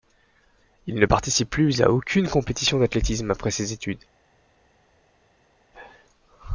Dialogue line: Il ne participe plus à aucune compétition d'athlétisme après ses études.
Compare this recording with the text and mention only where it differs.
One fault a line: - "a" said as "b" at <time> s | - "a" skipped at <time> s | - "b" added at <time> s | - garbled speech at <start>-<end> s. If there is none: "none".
none